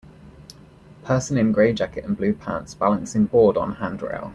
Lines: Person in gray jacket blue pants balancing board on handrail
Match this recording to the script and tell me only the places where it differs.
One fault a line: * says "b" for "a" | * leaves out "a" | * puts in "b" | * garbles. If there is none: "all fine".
* puts in "and"